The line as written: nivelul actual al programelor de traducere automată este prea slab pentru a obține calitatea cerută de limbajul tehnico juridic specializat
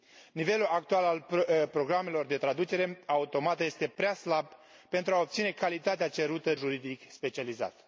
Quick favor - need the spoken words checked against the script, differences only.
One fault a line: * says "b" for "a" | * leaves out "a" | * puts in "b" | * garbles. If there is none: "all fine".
* leaves out "de limbajul tehnico"